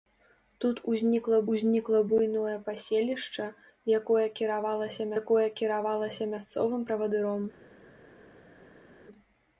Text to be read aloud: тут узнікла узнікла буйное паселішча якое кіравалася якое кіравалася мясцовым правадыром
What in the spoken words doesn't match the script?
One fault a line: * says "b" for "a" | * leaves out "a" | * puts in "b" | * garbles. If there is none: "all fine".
all fine